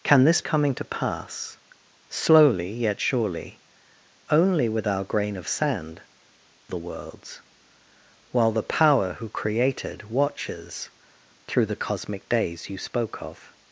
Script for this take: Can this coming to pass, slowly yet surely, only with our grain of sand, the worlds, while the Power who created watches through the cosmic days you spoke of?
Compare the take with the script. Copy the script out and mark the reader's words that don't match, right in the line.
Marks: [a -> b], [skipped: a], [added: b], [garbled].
Can this coming to pass, slowly yet surely, only with our grain of sand, the worlds, while the Power who created watches through the cosmic days you spoke of?